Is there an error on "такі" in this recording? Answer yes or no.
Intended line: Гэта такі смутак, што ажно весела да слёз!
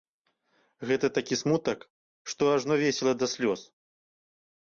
no